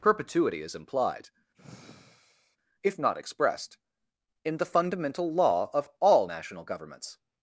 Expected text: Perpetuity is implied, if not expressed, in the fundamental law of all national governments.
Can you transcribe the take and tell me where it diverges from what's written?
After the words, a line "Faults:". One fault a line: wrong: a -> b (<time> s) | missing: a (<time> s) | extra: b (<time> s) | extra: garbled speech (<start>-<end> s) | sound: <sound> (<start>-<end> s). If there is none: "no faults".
Perpetuity is implied, if not expressed, in the fundamental law of all national governments.
Faults:
sound: sigh (1.5-2.6 s)